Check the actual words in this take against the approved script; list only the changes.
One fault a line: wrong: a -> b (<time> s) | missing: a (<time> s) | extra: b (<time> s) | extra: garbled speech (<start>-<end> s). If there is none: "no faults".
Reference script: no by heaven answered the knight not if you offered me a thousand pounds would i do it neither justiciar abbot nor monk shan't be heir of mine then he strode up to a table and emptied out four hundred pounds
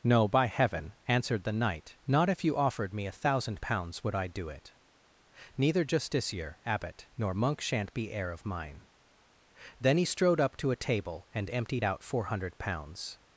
no faults